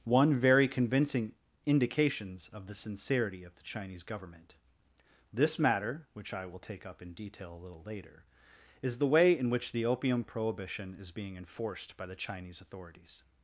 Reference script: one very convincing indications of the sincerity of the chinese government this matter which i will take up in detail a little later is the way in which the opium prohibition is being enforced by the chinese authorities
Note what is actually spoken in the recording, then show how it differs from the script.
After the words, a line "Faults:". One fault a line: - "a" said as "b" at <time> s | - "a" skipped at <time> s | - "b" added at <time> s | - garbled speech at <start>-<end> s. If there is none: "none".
one very convincing indications of the sincerity of the chinese government this matter which i will take up in detail a little later is the way in which the opium prohibition is being enforced by the chinese authorities
Faults:
none